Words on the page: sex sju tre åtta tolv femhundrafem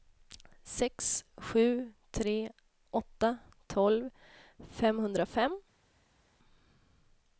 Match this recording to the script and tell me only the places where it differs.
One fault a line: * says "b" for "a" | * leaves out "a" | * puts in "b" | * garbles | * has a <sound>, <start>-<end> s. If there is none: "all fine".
all fine